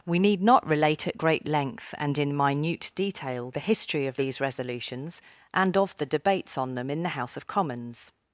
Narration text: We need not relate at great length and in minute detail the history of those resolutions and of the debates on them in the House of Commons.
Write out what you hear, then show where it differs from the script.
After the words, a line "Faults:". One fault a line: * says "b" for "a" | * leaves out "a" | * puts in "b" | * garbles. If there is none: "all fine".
We need not relate at great length and in minute detail the history of these resolutions and of the debates on them in the House of Commons.
Faults:
* says "these" for "those"